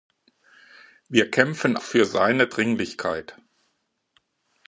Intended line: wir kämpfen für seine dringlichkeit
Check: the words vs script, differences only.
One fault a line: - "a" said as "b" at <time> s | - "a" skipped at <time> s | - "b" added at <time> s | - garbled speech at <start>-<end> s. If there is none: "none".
none